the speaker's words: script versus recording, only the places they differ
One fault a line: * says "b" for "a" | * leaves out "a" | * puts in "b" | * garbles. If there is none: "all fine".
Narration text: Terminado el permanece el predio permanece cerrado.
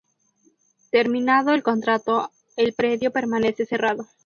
* says "contrato" for "permanece"